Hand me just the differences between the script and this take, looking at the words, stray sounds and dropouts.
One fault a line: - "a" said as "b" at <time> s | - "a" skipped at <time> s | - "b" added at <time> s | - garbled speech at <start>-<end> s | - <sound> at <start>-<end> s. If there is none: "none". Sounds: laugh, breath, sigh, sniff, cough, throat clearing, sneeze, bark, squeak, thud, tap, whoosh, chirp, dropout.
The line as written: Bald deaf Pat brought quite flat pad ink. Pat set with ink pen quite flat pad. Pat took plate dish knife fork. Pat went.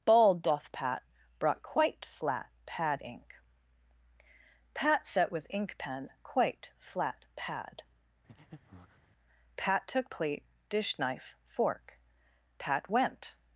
- "deaf" said as "doth" at 0.4 s
- breath at 8.3-9.1 s